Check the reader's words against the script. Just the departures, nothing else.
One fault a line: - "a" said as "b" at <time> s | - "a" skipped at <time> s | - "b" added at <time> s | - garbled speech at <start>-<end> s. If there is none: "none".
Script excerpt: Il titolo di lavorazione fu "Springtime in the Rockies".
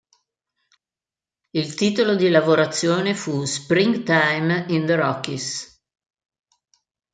none